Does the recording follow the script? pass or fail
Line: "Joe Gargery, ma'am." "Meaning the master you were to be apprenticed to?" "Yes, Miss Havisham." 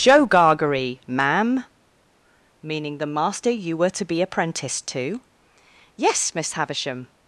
pass